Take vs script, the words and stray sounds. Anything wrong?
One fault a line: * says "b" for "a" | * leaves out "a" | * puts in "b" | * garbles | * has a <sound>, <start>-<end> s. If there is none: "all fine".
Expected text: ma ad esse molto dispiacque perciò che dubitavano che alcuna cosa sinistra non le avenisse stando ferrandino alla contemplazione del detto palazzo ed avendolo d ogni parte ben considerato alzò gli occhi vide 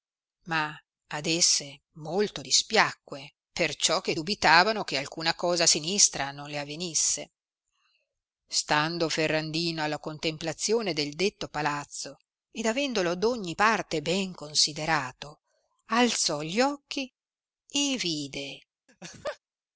* puts in "e"
* has a laugh, 18.9-19.4 s